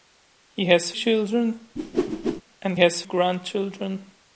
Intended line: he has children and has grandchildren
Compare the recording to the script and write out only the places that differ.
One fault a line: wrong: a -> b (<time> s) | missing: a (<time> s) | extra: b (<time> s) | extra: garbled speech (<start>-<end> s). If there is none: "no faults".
no faults